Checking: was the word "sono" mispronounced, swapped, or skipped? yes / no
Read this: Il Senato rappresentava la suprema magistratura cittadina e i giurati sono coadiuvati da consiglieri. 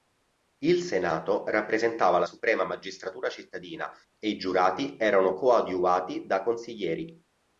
yes